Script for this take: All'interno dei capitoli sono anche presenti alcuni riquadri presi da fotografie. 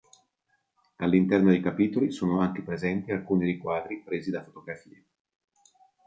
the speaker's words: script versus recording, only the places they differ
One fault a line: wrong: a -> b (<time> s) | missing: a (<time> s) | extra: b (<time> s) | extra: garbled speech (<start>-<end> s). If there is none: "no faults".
no faults